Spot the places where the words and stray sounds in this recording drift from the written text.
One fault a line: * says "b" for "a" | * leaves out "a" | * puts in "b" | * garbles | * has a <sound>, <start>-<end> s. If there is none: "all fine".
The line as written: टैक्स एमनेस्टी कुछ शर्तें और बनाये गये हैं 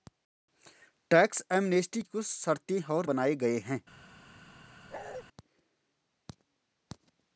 * has a bark, 4.9-5.2 s